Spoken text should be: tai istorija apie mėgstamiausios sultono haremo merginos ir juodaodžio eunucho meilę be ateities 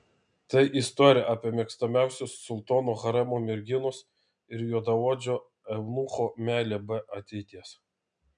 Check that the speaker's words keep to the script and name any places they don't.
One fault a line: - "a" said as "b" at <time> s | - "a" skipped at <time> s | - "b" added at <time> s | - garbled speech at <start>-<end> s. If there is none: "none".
none